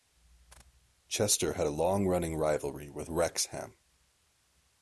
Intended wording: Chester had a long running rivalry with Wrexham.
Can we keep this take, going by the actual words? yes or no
yes